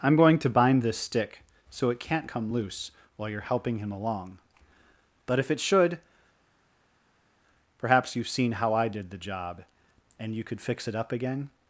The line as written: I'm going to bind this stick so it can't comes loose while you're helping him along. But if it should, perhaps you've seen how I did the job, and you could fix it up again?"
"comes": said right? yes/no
no